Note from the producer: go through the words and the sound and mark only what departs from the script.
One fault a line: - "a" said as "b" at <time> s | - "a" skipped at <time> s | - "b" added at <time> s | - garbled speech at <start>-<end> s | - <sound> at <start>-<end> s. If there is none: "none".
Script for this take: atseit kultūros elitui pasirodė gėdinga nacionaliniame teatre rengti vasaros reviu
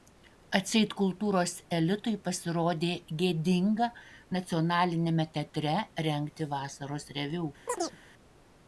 - chirp at 7.7-8.0 s